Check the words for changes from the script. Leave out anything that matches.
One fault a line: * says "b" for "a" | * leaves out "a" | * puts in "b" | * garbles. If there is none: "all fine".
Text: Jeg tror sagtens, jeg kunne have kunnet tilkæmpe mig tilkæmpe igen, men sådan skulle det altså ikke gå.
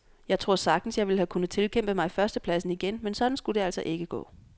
* says "ville" for "kunne"
* says "førstepladsen" for "tilkæmpe"